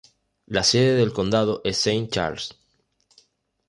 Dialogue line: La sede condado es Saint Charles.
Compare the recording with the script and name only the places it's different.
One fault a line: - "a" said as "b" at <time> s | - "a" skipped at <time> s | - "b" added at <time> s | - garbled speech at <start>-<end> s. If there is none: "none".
- "del" added at 0.9 s